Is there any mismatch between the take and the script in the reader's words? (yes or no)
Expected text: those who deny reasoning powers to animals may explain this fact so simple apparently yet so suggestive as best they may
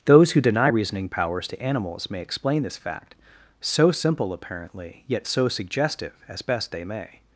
no